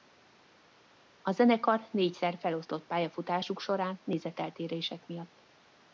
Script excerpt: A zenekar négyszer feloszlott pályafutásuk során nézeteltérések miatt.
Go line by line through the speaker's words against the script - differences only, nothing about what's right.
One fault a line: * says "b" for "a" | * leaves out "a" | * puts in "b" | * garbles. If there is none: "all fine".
all fine